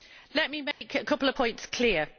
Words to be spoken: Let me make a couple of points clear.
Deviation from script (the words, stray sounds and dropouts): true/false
true